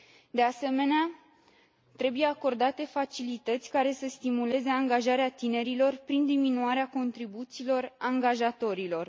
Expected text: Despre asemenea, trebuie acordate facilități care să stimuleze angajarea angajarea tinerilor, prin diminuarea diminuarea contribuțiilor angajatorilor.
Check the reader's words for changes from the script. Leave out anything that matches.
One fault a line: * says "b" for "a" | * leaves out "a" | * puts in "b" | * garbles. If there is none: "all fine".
* says "De" for "Despre"
* leaves out "angajarea"
* leaves out "diminuarea"